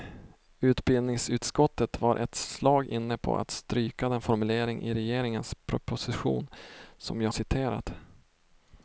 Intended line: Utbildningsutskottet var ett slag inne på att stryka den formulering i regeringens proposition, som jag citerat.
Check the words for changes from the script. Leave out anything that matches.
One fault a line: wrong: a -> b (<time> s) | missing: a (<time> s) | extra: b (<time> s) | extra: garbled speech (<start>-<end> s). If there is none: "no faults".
no faults